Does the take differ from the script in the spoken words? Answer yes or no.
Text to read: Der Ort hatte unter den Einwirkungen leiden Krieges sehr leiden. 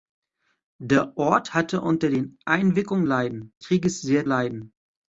no